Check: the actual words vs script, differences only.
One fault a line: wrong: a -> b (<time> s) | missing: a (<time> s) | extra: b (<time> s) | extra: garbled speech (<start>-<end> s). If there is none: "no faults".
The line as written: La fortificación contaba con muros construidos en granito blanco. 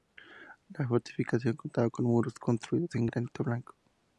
no faults